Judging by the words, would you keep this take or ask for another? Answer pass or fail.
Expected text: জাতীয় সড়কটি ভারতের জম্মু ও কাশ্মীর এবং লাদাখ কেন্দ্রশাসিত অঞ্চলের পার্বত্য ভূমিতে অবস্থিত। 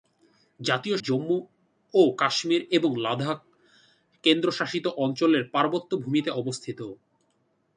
fail